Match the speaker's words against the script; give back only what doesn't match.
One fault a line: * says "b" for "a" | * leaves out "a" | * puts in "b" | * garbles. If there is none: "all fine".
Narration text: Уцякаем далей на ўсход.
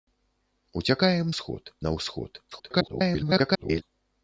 * says "ўсход" for "далей"
* garbles